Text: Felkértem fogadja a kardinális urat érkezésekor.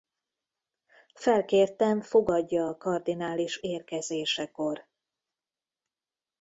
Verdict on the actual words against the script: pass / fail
fail